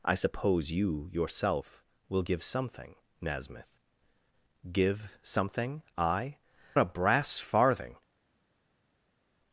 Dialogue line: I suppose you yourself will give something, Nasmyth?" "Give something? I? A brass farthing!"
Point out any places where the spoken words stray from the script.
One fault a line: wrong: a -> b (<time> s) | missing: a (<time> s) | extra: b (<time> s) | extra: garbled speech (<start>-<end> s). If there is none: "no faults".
no faults